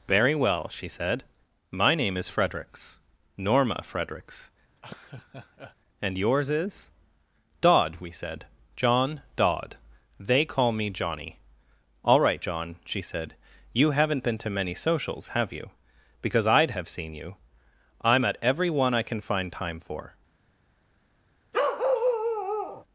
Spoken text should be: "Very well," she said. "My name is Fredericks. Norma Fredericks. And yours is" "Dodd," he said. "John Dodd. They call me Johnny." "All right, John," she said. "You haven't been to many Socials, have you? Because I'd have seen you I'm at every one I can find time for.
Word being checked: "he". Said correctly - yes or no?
no